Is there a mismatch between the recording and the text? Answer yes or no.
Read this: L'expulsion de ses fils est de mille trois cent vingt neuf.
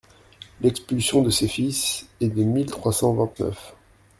no